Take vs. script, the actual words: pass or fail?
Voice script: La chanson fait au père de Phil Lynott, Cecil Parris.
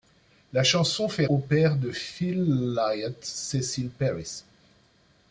pass